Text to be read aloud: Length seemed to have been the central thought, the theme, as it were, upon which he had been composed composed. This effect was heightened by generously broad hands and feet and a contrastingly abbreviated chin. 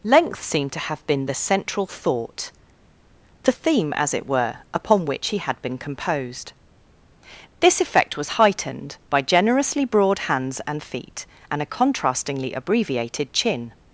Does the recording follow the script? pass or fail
fail